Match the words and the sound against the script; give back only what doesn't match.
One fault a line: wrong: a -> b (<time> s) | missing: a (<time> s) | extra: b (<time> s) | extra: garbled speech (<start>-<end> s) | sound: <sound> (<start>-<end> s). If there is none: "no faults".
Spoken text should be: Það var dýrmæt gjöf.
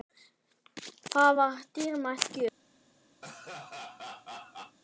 sound: laugh (3.2-4.8 s)